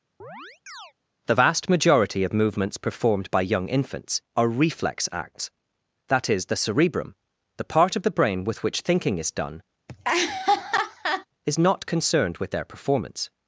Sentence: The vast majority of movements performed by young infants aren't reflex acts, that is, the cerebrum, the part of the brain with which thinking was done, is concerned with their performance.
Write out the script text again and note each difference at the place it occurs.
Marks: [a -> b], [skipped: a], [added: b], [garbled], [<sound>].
[chirp] The vast majority of movements performed by young infants [aren't -> are] reflex acts, that is, the cerebrum, the part of the brain with which thinking [was -> is] done, [laugh] is [added: not] concerned with their performance.